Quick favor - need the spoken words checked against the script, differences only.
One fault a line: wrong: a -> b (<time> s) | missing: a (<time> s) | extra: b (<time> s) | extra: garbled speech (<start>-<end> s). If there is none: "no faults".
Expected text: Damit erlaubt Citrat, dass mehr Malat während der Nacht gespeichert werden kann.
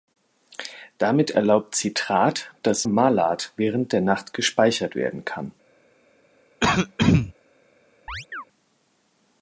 missing: mehr (2.9 s)